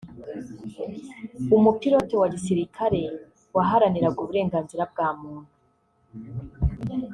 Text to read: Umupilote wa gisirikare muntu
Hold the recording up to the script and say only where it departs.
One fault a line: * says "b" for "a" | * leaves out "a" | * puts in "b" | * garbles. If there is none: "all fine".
* puts in "waharaniraga uburenganzira bwa"